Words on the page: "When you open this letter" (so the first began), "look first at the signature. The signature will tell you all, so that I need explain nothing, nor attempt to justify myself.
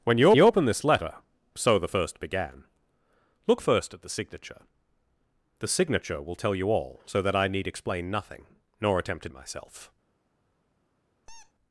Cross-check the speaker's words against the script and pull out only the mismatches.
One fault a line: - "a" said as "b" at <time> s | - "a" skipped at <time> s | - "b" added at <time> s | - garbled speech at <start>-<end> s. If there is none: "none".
- "you" added at 0.3 s
- "justify" skipped at 9.3 s